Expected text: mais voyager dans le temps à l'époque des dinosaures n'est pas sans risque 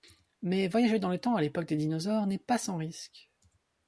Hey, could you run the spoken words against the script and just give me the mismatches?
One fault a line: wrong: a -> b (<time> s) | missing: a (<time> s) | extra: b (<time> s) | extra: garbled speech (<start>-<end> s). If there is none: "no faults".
no faults